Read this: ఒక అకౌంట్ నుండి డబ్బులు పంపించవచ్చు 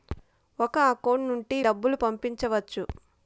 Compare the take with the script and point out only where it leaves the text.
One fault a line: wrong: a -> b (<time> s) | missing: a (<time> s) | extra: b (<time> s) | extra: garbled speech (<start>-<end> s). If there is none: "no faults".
no faults